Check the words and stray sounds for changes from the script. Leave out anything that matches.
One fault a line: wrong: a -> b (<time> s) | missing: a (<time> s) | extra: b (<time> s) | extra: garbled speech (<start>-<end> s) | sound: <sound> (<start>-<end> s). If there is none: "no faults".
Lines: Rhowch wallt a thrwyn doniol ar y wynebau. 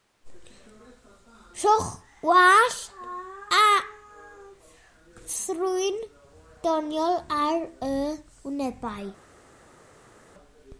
no faults